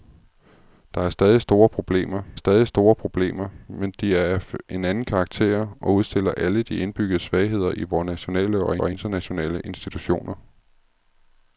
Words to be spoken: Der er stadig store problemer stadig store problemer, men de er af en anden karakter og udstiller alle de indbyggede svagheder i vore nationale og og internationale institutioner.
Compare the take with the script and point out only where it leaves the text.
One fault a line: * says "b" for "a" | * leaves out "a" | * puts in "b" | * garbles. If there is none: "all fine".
all fine